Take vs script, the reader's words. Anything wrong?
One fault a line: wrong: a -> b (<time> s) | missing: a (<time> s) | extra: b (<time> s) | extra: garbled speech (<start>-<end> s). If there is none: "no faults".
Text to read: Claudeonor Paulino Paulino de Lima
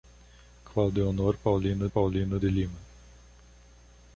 no faults